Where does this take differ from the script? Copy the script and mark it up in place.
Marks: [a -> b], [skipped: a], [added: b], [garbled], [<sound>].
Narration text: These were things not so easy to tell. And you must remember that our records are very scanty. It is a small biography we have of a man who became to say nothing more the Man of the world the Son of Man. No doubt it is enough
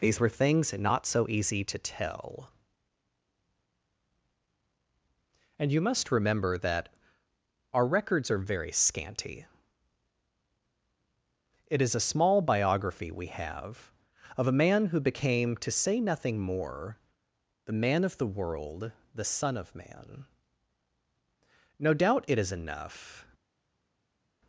These were things not so easy to tell. And you must remember that our records are very scanty. It is a small biography we have of a man who became to say nothing more the Man of the world the Son of Man. No doubt it is enough